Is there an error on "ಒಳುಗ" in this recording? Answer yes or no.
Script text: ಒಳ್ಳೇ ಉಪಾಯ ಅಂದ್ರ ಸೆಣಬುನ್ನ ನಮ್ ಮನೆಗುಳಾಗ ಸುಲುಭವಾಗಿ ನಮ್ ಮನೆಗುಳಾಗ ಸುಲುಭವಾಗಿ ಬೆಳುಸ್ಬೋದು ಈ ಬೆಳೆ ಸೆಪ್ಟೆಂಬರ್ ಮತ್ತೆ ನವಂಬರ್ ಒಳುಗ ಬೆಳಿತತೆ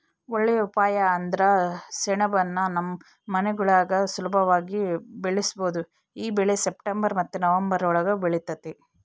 no